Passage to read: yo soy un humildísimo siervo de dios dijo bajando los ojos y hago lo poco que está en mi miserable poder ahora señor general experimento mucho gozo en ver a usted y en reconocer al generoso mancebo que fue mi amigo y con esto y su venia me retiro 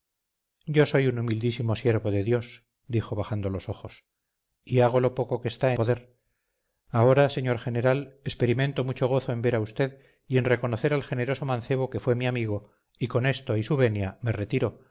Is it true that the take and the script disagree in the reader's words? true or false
true